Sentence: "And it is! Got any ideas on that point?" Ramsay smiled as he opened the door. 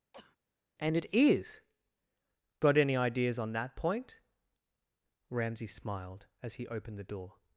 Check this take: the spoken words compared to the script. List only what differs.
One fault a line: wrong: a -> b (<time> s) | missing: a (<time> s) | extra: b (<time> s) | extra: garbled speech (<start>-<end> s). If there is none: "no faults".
no faults